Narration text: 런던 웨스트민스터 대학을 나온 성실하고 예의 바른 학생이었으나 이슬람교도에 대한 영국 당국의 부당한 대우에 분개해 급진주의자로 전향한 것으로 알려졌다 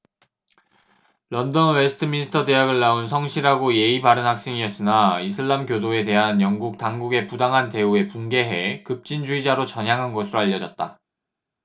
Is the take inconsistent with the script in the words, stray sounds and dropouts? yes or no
no